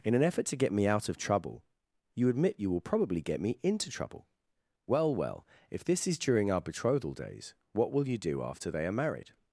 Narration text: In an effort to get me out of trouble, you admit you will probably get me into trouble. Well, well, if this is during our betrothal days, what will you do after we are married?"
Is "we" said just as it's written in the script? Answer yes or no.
no